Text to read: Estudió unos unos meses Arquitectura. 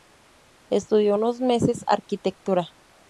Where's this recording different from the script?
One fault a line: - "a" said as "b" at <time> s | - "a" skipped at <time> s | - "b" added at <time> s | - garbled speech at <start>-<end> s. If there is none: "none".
- "unos" skipped at 1.4 s